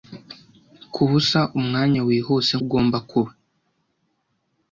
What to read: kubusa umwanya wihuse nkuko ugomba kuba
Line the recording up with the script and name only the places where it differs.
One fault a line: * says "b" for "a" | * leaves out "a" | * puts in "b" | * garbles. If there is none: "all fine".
* leaves out "nkuko"